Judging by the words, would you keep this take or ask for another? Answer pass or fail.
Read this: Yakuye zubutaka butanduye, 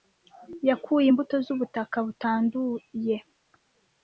fail